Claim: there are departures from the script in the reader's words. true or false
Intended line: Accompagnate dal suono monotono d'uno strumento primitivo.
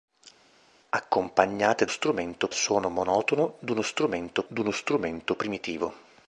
true